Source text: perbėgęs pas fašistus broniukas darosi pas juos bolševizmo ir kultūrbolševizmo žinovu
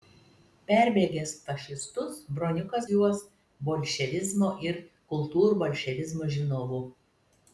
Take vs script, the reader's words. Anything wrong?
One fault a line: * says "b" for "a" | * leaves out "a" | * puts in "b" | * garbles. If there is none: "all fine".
* leaves out "pas"
* leaves out "darosi pas"